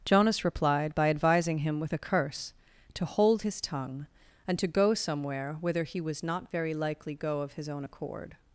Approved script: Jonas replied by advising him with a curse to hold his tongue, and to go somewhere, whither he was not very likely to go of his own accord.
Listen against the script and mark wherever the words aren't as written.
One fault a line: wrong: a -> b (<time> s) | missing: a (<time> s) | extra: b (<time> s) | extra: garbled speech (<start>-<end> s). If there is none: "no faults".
missing: to (7.1 s)